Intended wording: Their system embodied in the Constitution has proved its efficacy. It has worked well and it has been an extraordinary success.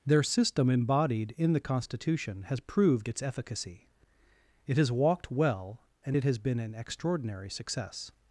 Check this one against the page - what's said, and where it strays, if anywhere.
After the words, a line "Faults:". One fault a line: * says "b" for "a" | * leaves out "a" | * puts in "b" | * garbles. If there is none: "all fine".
Their system embodied in the Constitution has proved its efficacy. It has walked well and it has been an extraordinary success.
Faults:
* says "walked" for "worked"